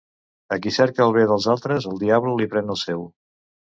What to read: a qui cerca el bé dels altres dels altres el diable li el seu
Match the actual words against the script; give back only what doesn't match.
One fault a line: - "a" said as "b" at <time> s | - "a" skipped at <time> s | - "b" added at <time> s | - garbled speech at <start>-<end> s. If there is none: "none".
- "dels altres" skipped at 1.9 s
- "pren" added at 2.5 s